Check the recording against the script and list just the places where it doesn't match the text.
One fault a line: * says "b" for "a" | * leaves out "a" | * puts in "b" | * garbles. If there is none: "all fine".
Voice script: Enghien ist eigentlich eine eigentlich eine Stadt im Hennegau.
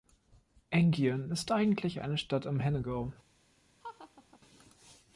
* leaves out "eigentlich eine"